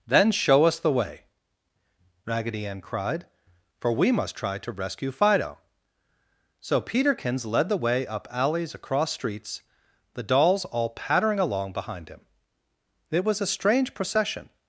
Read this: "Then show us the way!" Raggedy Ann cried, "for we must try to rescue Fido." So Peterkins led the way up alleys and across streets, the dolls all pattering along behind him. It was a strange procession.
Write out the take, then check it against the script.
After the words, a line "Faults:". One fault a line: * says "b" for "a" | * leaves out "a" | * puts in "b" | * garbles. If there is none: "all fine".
"Then show us the way!" Raggedy Ann cried, "for we must try to rescue Fido." So Peterkins led the way up alleys across streets, the dolls all pattering along behind him. It was a strange procession.
Faults:
* leaves out "and"